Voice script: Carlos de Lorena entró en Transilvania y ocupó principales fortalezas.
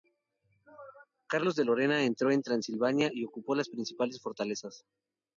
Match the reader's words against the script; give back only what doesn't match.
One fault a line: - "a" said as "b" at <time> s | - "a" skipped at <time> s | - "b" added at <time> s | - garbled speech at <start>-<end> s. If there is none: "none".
- "las" added at 3.5 s